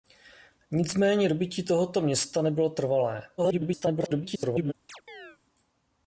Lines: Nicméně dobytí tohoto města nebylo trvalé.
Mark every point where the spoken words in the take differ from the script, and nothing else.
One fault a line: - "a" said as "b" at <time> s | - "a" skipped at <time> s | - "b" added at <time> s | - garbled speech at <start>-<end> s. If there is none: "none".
- garbled speech at 3.4-4.7 s